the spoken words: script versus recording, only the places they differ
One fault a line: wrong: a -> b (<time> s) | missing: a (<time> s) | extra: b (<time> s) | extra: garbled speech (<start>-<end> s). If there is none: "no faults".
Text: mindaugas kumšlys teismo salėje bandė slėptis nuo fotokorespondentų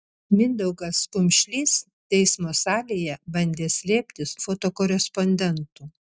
missing: nuo (4.4 s)